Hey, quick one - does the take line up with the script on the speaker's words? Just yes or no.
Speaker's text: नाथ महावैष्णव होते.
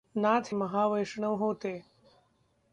yes